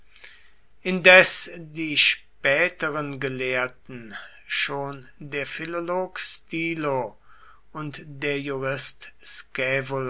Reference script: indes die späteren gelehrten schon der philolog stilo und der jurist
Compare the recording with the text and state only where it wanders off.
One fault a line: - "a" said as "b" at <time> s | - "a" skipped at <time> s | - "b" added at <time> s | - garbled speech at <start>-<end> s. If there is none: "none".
none